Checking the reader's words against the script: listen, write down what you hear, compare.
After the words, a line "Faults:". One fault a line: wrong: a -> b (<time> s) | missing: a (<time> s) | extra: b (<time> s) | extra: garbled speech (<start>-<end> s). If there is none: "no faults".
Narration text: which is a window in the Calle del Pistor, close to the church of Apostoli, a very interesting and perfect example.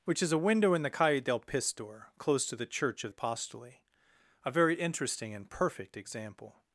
which is a window in the Calle del Pistor, close to the church of Apostoli, a very interesting and perfect example.
Faults:
no faults